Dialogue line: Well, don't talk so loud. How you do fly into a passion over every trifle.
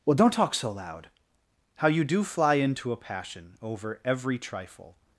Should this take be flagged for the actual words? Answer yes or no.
no